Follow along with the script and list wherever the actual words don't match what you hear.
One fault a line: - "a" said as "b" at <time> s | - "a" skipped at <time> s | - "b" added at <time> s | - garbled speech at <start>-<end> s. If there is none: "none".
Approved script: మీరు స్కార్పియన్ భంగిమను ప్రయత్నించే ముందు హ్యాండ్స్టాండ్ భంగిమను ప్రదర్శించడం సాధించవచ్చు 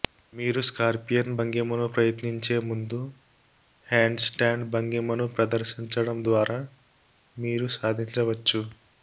- "ద్వారా మీరు" added at 6.2 s